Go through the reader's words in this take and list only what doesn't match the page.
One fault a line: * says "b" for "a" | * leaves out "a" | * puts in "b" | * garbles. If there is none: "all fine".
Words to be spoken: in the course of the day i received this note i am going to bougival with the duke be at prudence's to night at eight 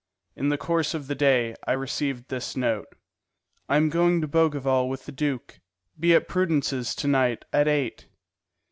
all fine